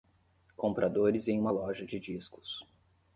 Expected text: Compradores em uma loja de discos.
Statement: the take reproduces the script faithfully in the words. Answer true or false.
true